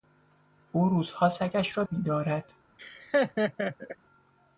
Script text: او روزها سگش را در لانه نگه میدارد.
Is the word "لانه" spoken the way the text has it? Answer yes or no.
no